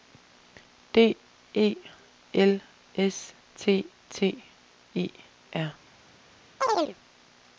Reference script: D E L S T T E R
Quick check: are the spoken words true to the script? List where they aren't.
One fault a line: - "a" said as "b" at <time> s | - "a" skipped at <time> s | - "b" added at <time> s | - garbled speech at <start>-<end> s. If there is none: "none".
none